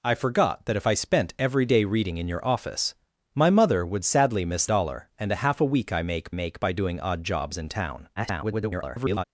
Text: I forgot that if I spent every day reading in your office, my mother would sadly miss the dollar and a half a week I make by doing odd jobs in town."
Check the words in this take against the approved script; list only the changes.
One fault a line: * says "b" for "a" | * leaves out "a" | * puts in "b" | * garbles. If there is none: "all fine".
* leaves out "the"
* puts in "make"
* garbles